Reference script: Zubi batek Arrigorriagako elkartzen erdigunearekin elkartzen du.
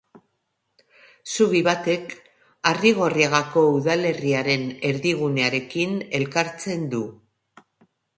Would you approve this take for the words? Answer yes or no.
no